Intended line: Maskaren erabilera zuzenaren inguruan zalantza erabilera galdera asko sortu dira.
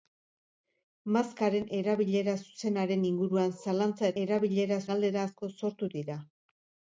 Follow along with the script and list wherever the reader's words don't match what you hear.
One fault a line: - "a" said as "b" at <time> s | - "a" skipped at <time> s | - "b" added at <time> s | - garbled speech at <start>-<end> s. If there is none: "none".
none